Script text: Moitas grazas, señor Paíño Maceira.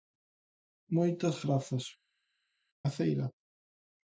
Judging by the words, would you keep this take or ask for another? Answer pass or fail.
fail